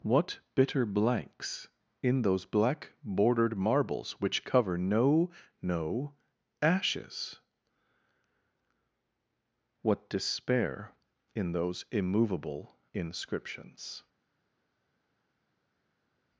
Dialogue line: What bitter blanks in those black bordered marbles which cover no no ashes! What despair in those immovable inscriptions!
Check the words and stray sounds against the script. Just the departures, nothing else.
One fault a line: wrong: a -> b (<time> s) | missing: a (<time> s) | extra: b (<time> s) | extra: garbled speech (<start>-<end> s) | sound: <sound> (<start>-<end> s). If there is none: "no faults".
no faults